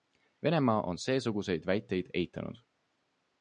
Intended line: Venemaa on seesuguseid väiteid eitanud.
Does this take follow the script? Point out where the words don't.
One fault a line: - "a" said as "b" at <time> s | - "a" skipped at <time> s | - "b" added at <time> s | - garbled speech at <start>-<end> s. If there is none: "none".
none